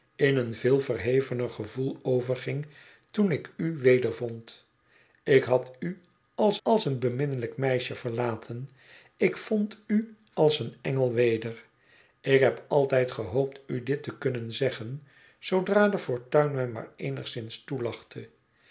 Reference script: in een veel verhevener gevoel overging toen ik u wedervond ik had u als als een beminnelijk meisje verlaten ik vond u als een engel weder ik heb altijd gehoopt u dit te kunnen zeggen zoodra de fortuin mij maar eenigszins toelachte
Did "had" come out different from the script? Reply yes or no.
no